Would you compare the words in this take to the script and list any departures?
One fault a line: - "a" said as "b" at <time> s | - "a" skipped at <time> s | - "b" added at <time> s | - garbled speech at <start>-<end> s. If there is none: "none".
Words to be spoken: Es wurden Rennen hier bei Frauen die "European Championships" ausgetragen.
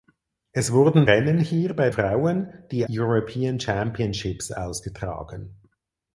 none